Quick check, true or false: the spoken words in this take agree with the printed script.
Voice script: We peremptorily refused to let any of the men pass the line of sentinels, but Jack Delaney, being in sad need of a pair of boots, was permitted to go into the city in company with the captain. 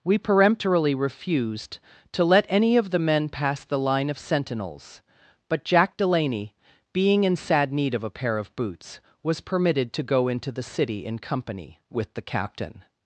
true